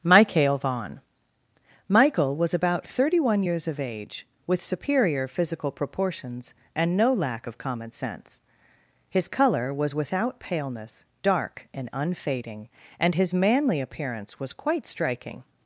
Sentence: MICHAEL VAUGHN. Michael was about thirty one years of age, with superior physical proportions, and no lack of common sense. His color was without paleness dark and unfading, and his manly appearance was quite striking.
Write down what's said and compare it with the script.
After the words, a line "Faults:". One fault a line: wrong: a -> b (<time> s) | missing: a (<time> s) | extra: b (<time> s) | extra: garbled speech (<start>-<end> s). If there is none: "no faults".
MICHAEL VAUGHN. Michael was about thirty one years of age, with superior physical proportions, and no lack of common sense. His color was without paleness dark and unfading, and his manly appearance was quite striking.
Faults:
no faults